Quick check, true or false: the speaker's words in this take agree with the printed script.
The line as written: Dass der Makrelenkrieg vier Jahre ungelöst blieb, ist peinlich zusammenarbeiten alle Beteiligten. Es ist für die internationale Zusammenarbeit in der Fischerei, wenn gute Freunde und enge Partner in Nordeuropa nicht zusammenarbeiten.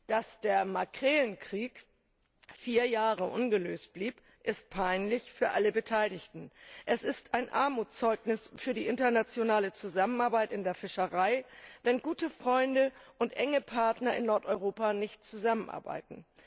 false